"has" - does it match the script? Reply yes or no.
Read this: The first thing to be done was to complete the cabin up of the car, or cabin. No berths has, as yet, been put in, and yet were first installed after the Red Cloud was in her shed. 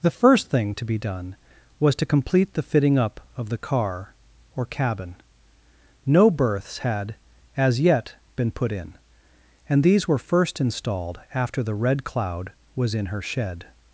no